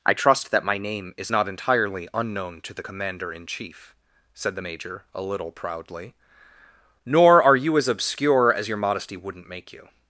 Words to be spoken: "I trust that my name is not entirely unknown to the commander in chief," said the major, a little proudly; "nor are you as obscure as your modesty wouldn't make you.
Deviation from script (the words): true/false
false